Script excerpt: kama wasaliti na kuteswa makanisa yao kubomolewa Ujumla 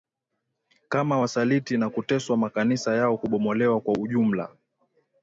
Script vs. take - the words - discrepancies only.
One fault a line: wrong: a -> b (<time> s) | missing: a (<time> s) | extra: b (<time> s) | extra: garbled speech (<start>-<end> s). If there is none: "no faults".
extra: Kwa (3.8 s)